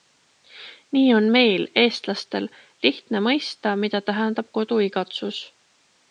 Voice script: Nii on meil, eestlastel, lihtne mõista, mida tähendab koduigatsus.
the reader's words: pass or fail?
pass